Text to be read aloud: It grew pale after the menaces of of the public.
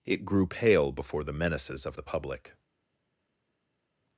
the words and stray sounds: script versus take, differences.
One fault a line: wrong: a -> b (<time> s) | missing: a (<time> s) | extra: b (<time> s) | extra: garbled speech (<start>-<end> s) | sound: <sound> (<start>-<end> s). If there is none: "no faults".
wrong: after -> before (0.9 s)
missing: of (2.0 s)